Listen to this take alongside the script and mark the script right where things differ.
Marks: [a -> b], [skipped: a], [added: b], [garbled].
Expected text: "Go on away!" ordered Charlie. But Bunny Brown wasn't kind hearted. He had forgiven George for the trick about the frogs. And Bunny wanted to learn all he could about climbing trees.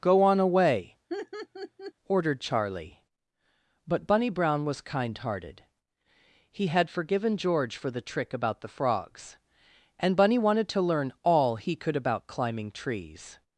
"Go on away!" ordered Charlie. But Bunny Brown [wasn't -> was] kind hearted. He had forgiven George for the trick about the frogs. And Bunny wanted to learn all he could about climbing trees.